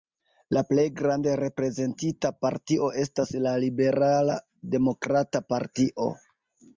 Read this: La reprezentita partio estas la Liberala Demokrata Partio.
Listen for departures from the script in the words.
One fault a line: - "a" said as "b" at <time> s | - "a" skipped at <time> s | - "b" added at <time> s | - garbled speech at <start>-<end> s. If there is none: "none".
- "plej grande" added at 0.7 s